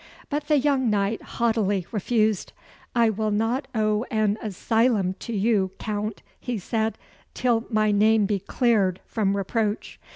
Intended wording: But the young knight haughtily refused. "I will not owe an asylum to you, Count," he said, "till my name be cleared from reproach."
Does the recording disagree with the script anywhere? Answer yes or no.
no